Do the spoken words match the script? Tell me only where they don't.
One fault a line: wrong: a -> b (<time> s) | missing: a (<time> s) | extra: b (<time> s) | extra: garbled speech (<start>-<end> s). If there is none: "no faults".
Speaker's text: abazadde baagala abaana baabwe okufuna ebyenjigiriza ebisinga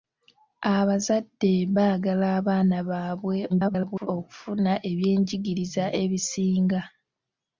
extra: garbled speech (3.5-4.1 s)